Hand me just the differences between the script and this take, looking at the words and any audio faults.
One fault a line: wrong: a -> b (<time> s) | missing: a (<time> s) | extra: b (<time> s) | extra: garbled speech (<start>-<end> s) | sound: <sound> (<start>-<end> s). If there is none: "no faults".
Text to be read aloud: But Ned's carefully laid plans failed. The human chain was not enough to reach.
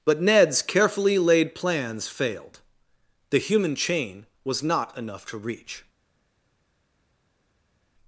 no faults